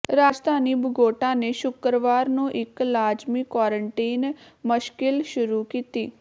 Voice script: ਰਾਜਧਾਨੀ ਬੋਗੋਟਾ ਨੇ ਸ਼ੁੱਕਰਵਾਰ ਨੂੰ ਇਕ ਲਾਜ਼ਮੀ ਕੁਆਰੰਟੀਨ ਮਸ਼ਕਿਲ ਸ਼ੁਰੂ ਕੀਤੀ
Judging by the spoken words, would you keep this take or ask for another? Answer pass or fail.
pass